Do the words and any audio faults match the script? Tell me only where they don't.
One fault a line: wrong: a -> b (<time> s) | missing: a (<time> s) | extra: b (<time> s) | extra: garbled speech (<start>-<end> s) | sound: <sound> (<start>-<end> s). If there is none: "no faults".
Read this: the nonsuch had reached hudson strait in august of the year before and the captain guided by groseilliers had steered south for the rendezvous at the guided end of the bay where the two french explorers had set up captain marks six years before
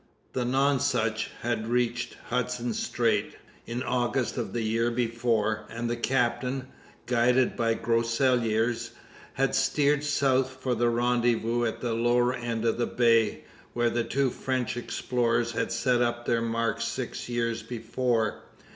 wrong: guided -> lower (11.9 s)
wrong: captain -> their (16.2 s)